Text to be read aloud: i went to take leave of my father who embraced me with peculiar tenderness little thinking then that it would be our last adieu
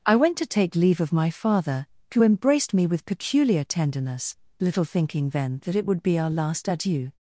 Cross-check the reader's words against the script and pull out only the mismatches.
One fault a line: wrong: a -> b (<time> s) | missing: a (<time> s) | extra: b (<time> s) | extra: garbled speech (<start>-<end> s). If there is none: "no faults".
no faults